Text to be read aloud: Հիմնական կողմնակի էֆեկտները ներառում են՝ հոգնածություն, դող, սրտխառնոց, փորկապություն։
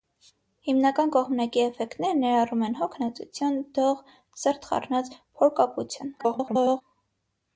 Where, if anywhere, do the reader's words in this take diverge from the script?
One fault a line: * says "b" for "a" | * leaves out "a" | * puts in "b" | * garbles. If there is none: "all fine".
* garbles